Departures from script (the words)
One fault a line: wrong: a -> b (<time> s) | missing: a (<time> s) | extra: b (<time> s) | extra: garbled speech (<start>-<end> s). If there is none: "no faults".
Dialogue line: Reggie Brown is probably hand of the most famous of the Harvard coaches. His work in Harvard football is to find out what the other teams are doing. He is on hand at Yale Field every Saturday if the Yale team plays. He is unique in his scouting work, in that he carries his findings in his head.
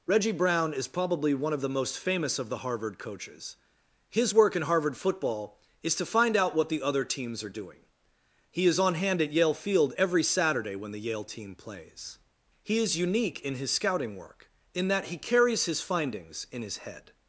wrong: hand -> one (1.4 s)
wrong: if -> when (10.7 s)